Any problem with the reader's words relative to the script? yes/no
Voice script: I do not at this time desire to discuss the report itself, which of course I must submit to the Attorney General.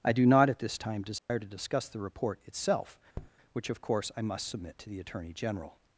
no